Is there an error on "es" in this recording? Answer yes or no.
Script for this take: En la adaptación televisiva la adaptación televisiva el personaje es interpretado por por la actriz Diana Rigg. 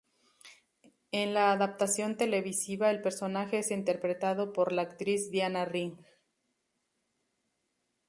no